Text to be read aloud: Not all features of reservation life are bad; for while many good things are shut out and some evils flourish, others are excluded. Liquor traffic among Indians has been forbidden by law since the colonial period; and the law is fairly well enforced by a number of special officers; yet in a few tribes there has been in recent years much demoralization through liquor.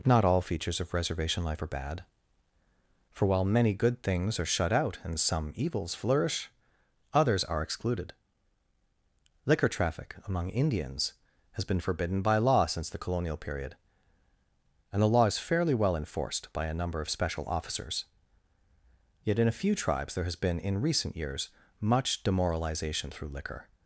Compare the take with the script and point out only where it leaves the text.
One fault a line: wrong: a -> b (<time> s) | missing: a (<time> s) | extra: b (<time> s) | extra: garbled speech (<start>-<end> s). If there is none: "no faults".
no faults